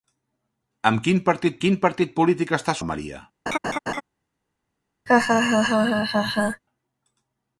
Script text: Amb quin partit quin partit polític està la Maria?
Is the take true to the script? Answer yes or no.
yes